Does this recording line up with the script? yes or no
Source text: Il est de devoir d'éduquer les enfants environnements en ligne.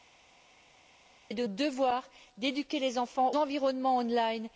yes